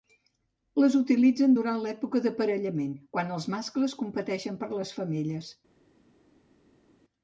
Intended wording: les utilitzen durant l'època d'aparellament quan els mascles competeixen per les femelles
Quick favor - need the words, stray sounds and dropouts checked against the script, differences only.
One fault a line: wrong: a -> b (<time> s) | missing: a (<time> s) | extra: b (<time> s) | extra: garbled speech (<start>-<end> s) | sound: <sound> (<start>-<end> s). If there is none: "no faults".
no faults